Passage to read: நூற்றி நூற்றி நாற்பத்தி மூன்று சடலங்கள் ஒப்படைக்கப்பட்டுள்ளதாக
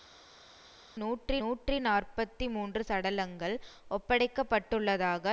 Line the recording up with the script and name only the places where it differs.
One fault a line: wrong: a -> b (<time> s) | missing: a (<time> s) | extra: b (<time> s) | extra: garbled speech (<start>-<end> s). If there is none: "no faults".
no faults